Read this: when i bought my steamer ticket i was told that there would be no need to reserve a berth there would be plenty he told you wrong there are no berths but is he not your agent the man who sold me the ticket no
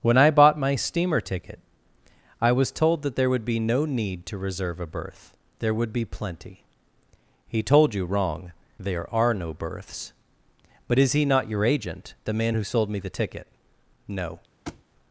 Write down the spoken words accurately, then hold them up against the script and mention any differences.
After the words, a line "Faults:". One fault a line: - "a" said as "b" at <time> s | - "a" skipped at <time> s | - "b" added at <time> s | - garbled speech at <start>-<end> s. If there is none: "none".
when i bought my steamer ticket i was told that there would be no need to reserve a berth there would be plenty he told you wrong there are no berths but is he not your agent the man who sold me the ticket no
Faults:
none